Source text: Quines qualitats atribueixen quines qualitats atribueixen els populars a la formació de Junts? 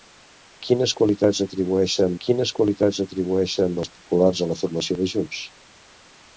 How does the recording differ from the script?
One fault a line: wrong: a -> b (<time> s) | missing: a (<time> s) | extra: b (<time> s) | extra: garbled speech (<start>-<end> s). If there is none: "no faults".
no faults